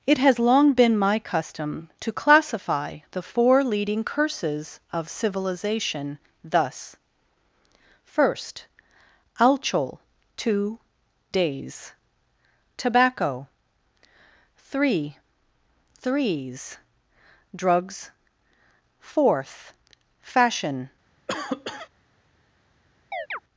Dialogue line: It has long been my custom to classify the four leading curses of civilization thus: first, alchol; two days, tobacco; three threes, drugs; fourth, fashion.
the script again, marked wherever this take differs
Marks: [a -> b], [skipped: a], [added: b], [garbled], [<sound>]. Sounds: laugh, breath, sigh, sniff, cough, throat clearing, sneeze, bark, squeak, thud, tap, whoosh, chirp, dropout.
It has long been my custom to classify the four leading curses of civilization thus: first, alchol; two days, tobacco; three threes, drugs; fourth, fashion. [cough] [chirp]